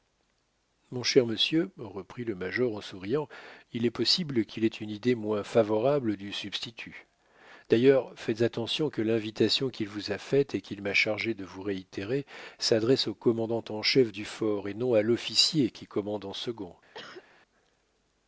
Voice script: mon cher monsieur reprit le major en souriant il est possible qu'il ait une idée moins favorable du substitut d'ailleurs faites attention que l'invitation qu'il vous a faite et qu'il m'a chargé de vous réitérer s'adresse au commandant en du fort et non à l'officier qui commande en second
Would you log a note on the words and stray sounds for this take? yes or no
yes